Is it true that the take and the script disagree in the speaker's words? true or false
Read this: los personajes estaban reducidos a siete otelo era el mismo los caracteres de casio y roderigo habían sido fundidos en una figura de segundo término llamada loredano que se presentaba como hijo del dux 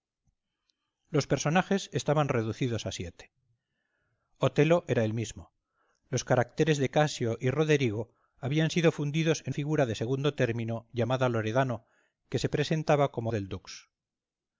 true